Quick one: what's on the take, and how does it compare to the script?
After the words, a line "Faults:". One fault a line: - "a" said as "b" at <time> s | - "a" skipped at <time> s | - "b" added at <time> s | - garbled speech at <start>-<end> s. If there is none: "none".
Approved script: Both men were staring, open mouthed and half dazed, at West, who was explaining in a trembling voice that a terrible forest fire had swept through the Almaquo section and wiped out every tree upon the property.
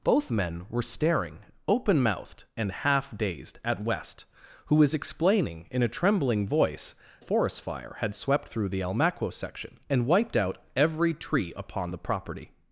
Both men were staring, open mouthed and half dazed, at West, who was explaining in a trembling voice forest fire had swept through the Almaquo section and wiped out every tree upon the property.
Faults:
- "that a terrible" skipped at 7.0 s